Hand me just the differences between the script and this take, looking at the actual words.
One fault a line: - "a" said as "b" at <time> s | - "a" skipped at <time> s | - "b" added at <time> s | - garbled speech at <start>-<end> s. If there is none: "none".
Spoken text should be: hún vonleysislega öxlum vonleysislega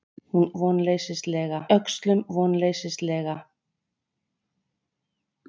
none